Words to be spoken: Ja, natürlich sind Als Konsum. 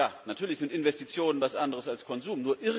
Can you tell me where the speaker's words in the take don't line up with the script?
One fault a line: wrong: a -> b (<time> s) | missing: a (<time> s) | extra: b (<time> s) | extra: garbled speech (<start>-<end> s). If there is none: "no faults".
extra: Investitionen etwas anderes (0.7 s)